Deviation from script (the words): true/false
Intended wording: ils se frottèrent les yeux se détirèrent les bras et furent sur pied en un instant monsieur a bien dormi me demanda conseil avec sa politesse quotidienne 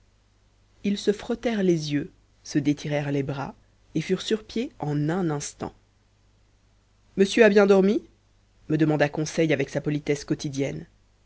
false